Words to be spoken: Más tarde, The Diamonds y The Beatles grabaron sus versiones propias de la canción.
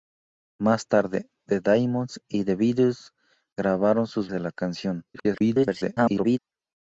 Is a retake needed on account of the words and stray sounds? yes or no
yes